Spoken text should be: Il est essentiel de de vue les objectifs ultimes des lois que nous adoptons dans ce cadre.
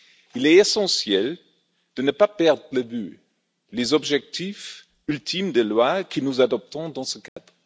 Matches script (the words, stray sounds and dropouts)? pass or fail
fail